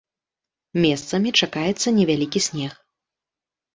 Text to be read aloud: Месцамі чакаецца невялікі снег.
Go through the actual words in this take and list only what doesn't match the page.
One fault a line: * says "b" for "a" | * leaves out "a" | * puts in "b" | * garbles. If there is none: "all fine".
all fine